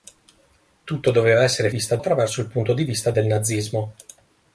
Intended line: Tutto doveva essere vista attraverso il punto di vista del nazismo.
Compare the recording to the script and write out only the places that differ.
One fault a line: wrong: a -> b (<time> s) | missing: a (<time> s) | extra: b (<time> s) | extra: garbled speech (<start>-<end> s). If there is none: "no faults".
no faults